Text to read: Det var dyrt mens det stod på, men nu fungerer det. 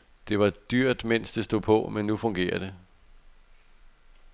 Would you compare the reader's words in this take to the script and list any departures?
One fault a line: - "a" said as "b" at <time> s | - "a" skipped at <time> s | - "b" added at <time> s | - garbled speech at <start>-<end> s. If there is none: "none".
none